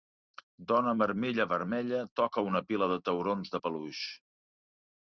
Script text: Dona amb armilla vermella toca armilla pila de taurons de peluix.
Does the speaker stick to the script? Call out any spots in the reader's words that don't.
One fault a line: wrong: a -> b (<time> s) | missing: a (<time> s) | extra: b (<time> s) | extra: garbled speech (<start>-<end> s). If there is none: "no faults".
wrong: armilla -> una (2.5 s)